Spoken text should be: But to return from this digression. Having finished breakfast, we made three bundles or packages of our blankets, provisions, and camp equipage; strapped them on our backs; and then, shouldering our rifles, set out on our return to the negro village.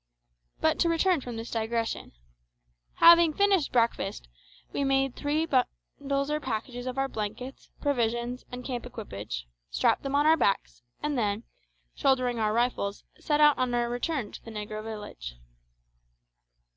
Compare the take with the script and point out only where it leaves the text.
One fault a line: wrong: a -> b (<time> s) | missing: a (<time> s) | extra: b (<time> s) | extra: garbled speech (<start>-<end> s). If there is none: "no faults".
no faults